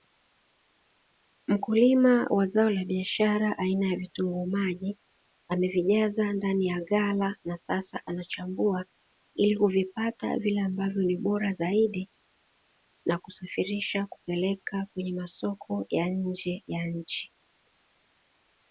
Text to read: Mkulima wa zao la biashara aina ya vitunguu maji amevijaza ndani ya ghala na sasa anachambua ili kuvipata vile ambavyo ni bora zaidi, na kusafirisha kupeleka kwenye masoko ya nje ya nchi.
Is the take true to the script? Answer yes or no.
yes